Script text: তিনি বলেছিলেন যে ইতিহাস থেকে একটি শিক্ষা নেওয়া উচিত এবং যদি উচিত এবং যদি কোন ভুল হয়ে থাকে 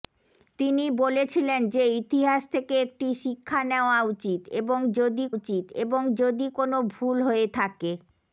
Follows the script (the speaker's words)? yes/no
yes